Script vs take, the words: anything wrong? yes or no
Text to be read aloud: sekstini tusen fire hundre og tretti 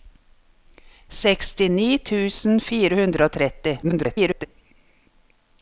yes